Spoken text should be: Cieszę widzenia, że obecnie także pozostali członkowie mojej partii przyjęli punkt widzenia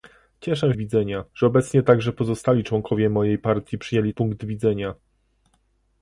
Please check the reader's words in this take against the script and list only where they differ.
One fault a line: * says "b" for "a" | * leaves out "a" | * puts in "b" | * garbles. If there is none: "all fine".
all fine